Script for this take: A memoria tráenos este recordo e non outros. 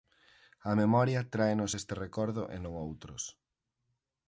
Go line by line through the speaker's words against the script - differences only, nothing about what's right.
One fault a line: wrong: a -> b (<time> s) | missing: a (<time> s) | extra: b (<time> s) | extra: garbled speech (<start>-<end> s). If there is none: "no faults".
no faults